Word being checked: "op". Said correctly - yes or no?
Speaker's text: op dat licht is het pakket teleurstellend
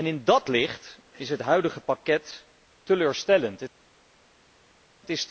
no